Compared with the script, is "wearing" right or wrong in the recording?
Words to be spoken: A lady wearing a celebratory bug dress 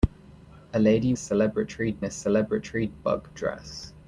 wrong